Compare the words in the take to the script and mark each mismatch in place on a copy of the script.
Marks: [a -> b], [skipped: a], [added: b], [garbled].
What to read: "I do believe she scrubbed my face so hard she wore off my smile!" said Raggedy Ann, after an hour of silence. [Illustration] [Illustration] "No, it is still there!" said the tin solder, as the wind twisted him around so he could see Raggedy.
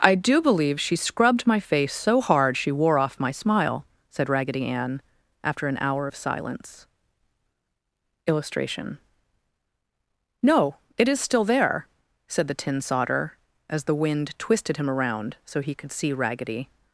"I do believe she scrubbed my face so hard she wore off my smile!" said Raggedy Ann, after an hour of silence. [Illustration] [skipped: [Illustration]] "No, it is still there!" said the tin solder, as the wind twisted him around so he could see Raggedy.